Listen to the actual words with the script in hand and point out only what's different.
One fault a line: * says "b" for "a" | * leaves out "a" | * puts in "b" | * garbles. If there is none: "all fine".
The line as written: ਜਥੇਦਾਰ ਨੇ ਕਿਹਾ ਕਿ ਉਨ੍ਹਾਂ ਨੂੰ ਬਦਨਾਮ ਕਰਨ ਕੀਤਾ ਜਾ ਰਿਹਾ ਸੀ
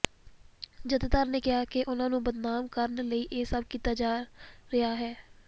* puts in "ਲਈ ਇਹ ਸਭ"
* says "ਹੈ" for "ਸੀ"